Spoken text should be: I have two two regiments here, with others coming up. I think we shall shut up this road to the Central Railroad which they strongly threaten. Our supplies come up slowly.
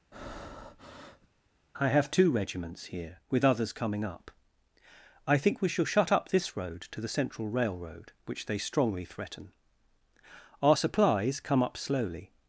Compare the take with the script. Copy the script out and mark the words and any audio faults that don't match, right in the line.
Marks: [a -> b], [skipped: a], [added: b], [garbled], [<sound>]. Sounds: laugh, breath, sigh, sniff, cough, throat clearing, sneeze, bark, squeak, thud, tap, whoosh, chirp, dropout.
[breath] I have two [skipped: two] regiments here, with others coming up. I think we shall shut up this road to the Central Railroad which they strongly threaten. Our supplies come up slowly.